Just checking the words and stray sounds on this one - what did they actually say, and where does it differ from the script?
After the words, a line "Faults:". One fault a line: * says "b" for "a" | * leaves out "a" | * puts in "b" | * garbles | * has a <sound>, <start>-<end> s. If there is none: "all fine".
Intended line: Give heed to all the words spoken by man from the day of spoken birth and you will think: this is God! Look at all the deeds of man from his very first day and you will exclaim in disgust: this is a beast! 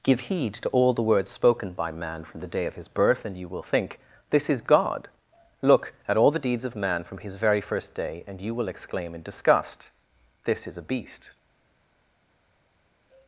Give heed to all the words spoken by man from the day of his birth and you will think: this is God! Look at all the deeds of man from his very first day and you will exclaim in disgust: this is a beast!
Faults:
* says "his" for "spoken"